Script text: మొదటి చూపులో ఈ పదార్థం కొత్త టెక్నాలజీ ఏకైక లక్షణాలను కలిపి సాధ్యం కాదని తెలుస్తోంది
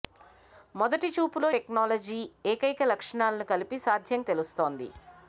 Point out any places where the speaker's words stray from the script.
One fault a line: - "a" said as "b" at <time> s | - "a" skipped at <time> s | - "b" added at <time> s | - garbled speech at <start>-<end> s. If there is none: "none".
- "ఈ పదార్థం కొత్త" skipped at 1.5 s
- "కాదని" skipped at 4.2 s